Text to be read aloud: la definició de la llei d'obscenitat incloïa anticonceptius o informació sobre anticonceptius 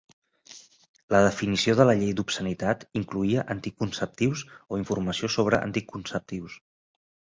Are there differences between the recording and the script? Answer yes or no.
no